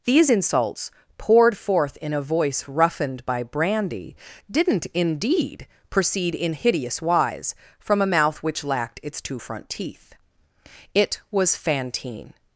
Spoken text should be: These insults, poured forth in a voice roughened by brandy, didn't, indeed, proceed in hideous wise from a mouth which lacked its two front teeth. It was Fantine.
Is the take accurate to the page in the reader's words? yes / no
yes